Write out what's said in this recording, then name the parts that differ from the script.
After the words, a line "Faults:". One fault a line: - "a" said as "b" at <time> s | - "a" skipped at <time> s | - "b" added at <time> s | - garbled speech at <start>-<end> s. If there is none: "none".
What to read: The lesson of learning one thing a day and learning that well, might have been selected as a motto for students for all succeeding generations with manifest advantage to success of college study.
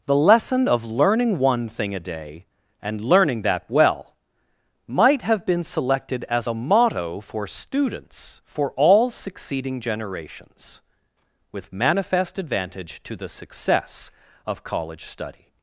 The lesson of learning one thing a day and learning that well, might have been selected as a motto for students for all succeeding generations with manifest advantage to the success of college study.
Faults:
- "the" added at 13.2 s